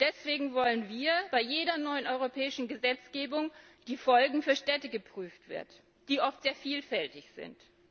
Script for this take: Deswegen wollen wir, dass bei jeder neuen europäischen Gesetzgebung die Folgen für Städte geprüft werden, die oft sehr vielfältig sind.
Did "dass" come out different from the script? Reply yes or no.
yes